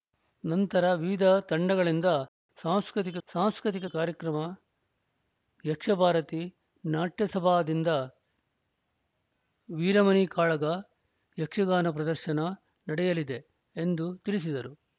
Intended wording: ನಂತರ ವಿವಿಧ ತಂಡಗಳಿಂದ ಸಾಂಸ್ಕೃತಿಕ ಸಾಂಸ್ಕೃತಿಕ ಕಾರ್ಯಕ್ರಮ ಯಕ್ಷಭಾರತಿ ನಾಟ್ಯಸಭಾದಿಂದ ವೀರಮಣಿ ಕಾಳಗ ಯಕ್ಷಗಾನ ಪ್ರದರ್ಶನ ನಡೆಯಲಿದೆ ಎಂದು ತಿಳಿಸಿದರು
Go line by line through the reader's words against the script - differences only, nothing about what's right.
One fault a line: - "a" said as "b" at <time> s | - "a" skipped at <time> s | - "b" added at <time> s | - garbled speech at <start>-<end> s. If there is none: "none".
none